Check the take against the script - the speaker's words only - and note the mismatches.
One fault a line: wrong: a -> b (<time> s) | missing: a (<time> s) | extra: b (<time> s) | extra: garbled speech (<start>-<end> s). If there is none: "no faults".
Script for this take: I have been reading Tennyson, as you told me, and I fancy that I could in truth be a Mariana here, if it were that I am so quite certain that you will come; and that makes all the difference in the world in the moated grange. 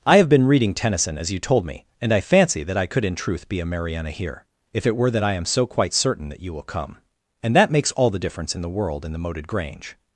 no faults